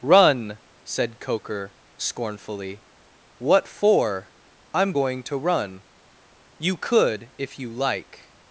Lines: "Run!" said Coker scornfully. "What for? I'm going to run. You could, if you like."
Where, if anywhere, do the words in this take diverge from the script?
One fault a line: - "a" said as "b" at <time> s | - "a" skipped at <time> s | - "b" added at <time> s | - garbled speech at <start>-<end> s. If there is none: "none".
none